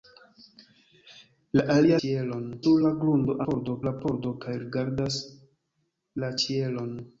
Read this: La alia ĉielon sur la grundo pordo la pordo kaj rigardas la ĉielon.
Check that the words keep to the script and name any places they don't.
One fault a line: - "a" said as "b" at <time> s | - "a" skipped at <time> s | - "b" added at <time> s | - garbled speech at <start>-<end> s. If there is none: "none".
none